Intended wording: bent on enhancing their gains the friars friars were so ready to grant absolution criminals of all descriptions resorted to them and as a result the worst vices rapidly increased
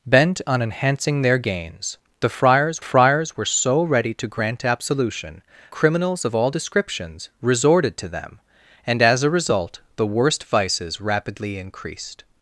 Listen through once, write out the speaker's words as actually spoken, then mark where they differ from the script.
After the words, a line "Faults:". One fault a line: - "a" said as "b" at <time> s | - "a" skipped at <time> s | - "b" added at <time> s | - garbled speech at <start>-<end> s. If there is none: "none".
bent on enhancing their gains the friars friars were so ready to grant absolution criminals of all descriptions resorted to them and as a result the worst vices rapidly increased
Faults:
none